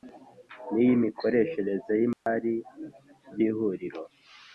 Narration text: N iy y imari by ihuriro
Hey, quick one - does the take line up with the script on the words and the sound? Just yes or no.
no